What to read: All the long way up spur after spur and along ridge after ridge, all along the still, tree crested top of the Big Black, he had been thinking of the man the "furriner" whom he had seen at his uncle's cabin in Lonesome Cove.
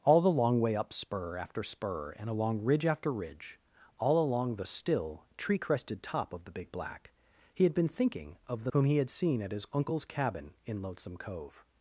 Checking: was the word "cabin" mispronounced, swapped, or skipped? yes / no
no